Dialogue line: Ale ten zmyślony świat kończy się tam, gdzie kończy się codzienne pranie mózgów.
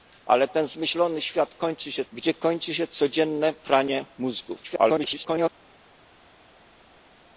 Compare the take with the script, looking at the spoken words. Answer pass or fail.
fail